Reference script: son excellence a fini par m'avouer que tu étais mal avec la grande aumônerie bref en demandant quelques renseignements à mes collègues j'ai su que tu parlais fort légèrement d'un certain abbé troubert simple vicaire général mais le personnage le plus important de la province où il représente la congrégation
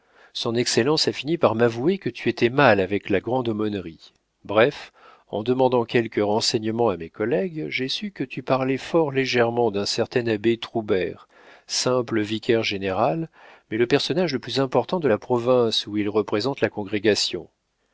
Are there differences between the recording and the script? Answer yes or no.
no